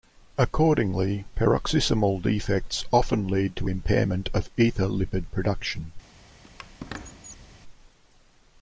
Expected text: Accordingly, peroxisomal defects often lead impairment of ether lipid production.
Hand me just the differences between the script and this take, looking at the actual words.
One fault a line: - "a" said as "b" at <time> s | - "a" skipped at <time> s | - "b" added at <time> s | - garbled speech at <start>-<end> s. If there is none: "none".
- "to" added at 3.6 s